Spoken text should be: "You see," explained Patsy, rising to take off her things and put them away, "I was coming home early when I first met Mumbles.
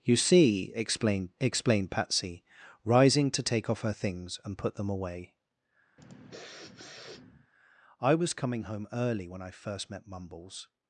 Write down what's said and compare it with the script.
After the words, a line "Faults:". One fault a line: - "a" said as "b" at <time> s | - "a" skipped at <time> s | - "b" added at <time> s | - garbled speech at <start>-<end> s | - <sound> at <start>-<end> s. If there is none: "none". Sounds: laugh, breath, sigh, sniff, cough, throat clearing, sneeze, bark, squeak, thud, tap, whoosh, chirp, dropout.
"You see," explained explained Patsy, rising to take off her things and put them away, "I was coming home early when I first met Mumbles.
Faults:
- "explained" added at 1.4 s
- sniff at 6.0-7.5 s